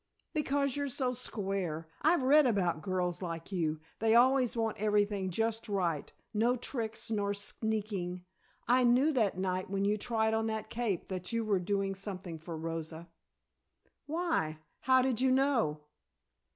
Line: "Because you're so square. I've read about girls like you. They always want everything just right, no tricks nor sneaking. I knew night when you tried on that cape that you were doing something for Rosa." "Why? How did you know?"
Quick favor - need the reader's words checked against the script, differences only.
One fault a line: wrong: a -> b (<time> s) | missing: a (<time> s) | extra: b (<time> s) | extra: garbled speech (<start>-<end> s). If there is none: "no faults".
extra: that (9.1 s)